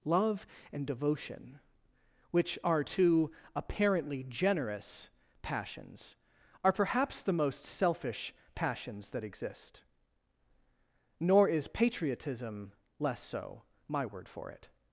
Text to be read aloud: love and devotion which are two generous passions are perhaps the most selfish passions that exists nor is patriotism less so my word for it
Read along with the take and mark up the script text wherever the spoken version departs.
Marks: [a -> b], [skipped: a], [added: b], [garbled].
love and devotion which are two [added: apparently] generous passions are perhaps the most selfish passions that [exists -> exist] nor is patriotism less so my word for it